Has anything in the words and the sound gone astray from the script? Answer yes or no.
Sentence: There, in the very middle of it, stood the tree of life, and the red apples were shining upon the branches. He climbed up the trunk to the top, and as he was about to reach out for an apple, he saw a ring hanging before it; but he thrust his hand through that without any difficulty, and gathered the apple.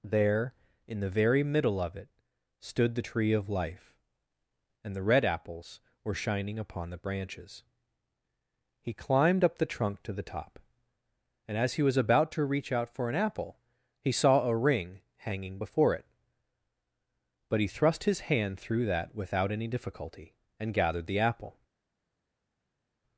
no